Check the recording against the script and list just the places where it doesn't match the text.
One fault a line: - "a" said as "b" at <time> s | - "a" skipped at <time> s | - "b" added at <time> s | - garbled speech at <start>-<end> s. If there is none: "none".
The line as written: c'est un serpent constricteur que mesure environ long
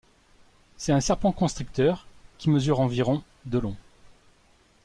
- "que" said as "qui" at 2.4 s
- "de" added at 3.5 s